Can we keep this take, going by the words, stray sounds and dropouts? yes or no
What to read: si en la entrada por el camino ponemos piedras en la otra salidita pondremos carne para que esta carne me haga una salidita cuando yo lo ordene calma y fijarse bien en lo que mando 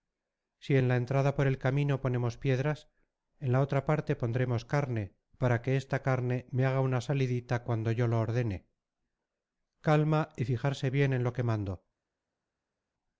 no